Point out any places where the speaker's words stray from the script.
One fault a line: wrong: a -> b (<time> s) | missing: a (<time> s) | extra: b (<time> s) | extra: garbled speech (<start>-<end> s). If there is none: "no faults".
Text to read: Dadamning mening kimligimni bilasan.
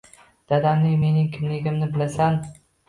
no faults